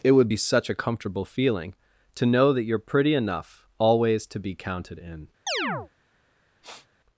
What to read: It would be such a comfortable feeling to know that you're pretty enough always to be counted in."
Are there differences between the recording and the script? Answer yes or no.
no